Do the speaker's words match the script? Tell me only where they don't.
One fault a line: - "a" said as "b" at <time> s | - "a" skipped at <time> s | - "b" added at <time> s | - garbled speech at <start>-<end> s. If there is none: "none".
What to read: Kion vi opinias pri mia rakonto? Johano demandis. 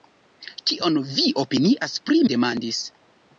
- "mia rakonto Johano" skipped at 2.2 s